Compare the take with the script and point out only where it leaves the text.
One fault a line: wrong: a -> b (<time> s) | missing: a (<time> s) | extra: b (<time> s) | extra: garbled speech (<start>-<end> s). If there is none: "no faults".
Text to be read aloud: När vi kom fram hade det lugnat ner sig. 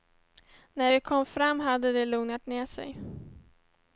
no faults